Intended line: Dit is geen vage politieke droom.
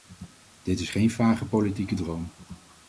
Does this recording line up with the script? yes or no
yes